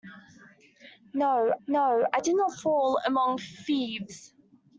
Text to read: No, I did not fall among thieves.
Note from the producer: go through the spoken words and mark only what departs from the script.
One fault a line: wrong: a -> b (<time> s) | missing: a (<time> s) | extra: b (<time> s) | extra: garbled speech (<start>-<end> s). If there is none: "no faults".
extra: no (1.7 s)